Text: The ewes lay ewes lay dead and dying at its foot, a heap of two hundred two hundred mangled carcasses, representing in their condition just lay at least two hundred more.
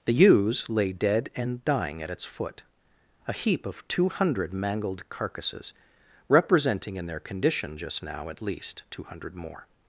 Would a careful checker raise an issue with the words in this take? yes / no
yes